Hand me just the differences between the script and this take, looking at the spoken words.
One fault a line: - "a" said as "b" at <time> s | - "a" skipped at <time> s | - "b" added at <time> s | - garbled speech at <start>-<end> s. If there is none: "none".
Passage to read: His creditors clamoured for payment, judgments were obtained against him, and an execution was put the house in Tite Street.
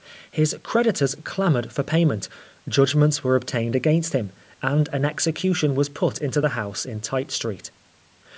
- "into" added at 6.2 s